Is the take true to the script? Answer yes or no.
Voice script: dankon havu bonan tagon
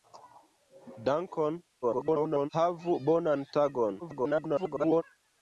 no